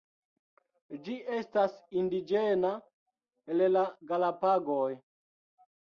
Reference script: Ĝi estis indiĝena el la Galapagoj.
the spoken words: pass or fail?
fail